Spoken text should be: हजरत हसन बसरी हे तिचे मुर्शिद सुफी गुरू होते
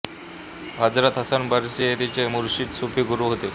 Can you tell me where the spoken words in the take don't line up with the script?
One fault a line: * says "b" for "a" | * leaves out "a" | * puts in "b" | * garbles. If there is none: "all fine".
all fine